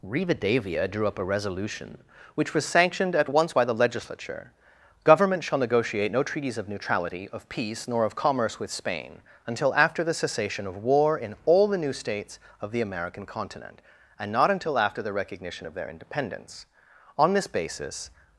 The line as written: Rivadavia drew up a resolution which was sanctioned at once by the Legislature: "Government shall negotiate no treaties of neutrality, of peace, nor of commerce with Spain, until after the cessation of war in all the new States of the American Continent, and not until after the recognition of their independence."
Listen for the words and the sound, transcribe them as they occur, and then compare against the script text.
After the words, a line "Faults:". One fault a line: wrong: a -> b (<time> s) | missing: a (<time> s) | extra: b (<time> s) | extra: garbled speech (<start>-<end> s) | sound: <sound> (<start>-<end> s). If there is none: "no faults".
Rivadavia drew up a resolution which was sanctioned at once by the Legislature: "Government shall negotiate no treaties of neutrality, of peace, nor of commerce with Spain, until after the cessation of war in all the new States of the American Continent, and not until after the recognition of their independence." On this basis
Faults:
extra: On this basis (17.2 s)